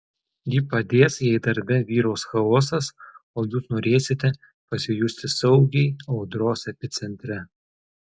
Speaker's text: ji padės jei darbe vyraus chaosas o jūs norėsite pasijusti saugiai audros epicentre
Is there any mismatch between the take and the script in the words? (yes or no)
no